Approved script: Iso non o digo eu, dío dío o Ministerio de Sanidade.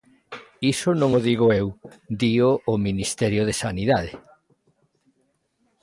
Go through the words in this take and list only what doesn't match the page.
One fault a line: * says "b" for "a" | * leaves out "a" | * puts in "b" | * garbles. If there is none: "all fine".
* leaves out "dío"